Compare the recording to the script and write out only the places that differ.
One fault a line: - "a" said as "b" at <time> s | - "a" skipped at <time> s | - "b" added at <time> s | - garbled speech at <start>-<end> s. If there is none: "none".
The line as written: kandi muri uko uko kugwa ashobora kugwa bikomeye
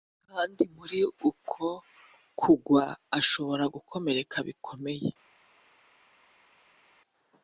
- "uko" skipped at 1.6 s
- "kugwa" said as "gukomereka" at 3.7 s